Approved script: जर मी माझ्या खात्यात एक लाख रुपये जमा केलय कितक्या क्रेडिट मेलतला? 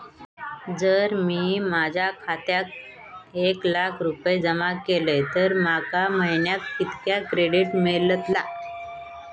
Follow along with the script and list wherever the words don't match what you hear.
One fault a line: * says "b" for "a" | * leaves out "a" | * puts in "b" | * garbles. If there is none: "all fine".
* puts in "तर माका महिन्याक"